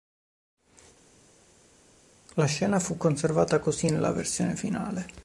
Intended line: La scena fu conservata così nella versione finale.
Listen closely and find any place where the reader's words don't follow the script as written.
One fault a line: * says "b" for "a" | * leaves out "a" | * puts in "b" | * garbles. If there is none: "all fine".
all fine